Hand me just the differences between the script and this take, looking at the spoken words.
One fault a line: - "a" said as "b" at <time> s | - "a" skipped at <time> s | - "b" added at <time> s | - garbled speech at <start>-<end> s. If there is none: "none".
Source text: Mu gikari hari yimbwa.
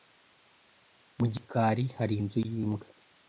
- "inzu" added at 2.2 s